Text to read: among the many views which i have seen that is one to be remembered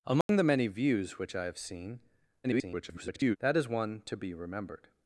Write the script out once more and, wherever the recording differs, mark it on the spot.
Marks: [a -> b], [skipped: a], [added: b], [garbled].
among the many views which i have seen [garbled] that is one to be remembered